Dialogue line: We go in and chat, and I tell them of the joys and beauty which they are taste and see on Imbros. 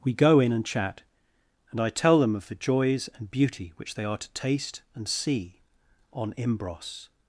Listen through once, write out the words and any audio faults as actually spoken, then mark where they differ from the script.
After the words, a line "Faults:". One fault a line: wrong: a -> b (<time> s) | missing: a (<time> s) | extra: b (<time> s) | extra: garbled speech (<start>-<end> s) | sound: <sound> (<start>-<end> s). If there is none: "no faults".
We go in and chat, and I tell them of the joys and beauty which they are to taste and see on Imbros.
Faults:
extra: to (4.2 s)